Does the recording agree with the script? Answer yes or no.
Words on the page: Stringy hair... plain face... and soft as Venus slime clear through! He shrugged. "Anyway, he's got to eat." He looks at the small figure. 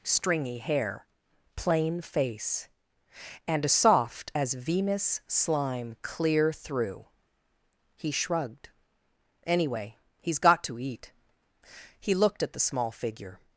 no